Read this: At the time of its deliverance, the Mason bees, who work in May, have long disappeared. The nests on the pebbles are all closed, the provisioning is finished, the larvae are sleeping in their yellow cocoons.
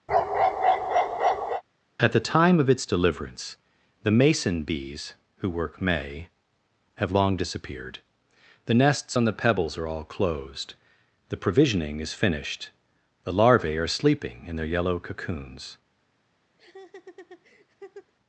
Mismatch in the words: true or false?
true